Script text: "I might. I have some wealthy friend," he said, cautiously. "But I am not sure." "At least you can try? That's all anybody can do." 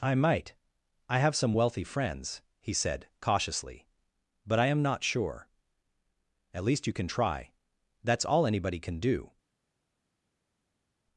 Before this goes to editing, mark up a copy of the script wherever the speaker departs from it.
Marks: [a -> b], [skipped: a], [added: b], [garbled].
"I might. I have some wealthy [friend," -> friends] he said, cautiously. "But I am not sure." "At least you can try? That's all anybody can do."